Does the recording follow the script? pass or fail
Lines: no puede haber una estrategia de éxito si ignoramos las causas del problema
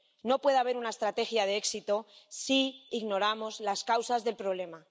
pass